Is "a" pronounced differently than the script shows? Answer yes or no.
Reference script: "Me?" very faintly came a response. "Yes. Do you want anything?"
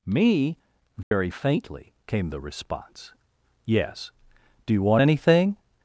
yes